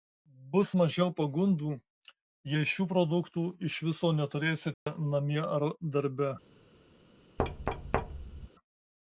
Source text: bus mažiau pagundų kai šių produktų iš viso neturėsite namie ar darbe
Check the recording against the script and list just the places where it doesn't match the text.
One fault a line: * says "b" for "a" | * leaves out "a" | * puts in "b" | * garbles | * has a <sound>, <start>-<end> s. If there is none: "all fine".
* says "jei" for "kai"
* has a dropout, 4.7-4.9 s
* has a thud, 7.4-8.5 s